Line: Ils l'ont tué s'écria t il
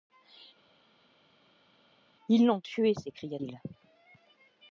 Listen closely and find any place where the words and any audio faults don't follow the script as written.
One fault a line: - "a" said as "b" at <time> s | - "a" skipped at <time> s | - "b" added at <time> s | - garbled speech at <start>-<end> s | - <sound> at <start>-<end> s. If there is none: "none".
- "t" skipped at 3.4 s